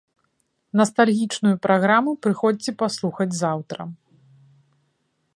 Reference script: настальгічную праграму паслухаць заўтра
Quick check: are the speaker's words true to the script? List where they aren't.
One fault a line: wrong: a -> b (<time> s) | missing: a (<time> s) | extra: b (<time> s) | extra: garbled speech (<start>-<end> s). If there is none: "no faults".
extra: прыходзьце (2.3 s)